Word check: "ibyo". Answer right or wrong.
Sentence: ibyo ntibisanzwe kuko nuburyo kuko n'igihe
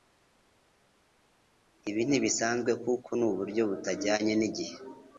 wrong